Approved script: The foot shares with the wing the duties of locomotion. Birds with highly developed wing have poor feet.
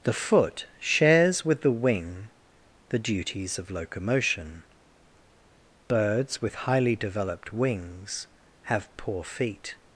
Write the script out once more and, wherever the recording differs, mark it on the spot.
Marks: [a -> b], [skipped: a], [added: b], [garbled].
The foot shares with the wing the duties of locomotion. Birds with highly developed [wing -> wings] have poor feet.